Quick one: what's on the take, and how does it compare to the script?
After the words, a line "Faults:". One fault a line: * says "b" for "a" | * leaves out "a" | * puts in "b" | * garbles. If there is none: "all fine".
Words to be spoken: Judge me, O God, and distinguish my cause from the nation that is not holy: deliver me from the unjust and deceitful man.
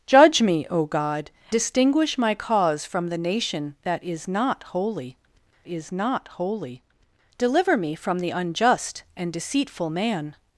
Judge me, O God, distinguish my cause from the nation that is not holy is not holy: deliver me from the unjust and deceitful man.
Faults:
* leaves out "and"
* puts in "is not holy"